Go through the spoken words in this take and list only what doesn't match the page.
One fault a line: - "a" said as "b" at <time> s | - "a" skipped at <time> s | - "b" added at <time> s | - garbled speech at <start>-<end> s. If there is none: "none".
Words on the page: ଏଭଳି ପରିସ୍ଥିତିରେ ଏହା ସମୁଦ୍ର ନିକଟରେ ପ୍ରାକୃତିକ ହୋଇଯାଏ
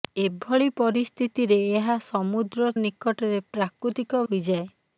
none